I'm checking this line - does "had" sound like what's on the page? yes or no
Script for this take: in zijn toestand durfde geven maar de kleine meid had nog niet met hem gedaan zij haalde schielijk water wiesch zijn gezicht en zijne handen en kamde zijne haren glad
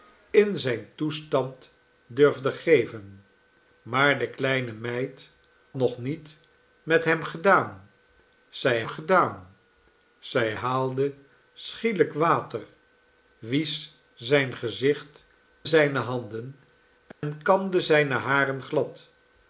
no